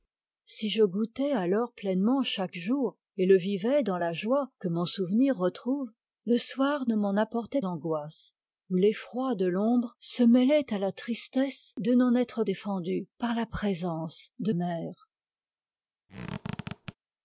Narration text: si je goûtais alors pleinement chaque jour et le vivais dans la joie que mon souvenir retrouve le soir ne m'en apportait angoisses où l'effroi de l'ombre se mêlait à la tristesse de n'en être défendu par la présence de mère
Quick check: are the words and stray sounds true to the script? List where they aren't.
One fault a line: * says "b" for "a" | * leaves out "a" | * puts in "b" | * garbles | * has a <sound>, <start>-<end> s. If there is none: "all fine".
* has a squeak, 16.1-16.9 s